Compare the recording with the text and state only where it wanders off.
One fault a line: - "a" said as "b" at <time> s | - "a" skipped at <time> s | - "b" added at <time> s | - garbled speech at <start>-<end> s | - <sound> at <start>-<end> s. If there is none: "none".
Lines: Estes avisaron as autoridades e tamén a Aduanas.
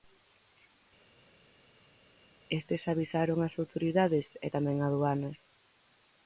none